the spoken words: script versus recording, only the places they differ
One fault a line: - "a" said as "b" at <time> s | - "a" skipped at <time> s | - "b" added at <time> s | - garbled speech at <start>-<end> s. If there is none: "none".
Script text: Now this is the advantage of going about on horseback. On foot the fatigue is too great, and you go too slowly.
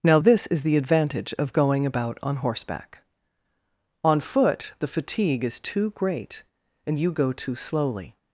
none